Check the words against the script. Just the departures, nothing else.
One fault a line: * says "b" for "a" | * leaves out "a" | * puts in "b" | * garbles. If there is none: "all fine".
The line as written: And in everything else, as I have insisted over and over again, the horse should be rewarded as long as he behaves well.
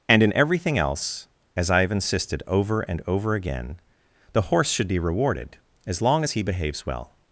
all fine